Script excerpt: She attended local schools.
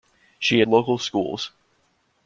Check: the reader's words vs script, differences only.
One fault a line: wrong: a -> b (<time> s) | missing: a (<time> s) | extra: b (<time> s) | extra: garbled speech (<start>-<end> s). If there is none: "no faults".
missing: attended (0.6 s)